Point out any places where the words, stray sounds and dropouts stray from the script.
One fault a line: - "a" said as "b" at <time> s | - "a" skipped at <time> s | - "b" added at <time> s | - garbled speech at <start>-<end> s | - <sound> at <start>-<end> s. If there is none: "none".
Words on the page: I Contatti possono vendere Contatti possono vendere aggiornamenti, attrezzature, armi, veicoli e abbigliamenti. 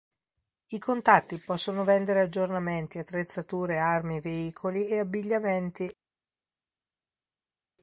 - "Contatti possono vendere" skipped at 2.2 s